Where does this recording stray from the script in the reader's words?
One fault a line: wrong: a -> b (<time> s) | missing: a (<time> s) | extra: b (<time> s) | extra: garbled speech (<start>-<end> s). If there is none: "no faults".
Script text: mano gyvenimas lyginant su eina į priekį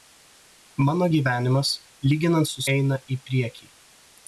no faults